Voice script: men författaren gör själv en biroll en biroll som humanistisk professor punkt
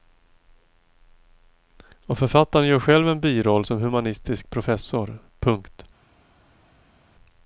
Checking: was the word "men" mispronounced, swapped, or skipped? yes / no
yes